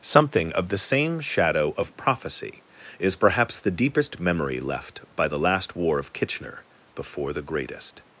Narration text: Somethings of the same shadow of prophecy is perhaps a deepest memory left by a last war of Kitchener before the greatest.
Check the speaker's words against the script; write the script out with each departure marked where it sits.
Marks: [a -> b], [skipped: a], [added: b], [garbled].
[Somethings -> Something] of the same shadow of prophecy is perhaps [a -> the] deepest memory left by [a -> the] last war of Kitchener before the greatest.